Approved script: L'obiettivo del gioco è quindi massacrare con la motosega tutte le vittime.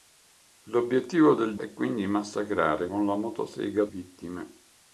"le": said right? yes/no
no